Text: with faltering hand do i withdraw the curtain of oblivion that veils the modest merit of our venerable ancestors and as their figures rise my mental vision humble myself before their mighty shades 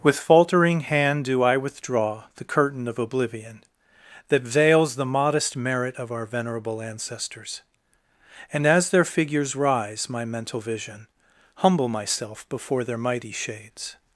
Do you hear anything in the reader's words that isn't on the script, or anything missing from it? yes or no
no